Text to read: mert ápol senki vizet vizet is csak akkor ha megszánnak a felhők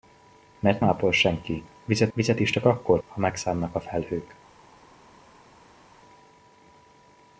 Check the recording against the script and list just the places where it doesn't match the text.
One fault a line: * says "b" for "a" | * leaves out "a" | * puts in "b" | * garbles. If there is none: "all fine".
all fine